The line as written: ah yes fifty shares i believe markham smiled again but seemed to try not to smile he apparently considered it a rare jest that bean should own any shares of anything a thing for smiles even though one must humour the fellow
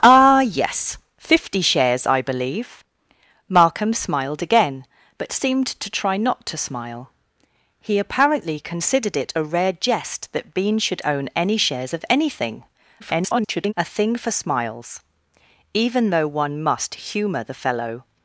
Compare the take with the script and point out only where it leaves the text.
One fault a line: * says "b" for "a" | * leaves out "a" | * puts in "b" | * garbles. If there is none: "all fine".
* garbles